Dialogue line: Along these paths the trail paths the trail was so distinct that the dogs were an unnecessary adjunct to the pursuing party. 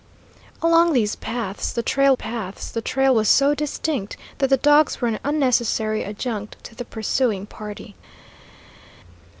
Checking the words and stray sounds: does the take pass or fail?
pass